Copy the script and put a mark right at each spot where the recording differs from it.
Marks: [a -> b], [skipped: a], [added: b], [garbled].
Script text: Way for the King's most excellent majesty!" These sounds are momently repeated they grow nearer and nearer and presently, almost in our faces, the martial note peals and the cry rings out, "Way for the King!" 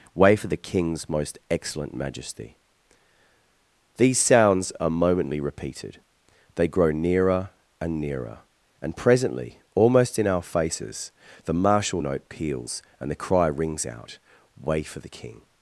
Way for the King's most excellent majesty!" These sounds are momently repeated they grow nearer and nearer and presently, almost in our faces, the martial note peals and the cry rings out, "Way for the King!"